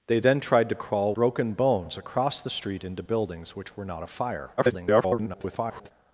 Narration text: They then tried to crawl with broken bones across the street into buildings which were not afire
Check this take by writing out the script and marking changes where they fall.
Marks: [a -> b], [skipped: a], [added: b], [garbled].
They then tried to crawl [skipped: with] broken bones across the street into buildings which were not afire [garbled]